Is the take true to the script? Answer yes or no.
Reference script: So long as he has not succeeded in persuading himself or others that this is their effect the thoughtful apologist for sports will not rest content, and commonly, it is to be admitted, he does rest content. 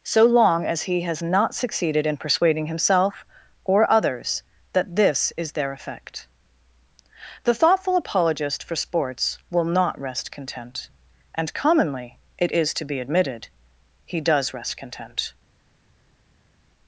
yes